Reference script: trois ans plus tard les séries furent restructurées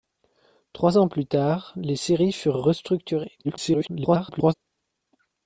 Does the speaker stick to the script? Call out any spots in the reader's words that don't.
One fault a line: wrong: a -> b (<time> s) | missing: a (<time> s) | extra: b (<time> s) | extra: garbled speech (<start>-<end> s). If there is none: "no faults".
extra: garbled speech (3.4-4.5 s)